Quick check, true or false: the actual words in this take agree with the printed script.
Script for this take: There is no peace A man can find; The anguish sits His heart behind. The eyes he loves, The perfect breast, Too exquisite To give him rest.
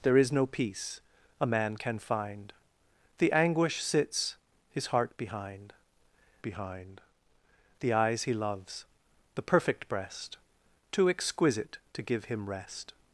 false